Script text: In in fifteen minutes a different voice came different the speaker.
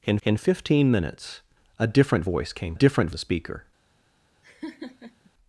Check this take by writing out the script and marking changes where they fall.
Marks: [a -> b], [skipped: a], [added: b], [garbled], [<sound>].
In in fifteen minutes a different voice came different the speaker. [laugh]